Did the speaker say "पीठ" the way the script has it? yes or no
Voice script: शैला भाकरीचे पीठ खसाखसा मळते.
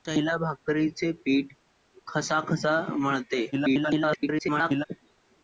yes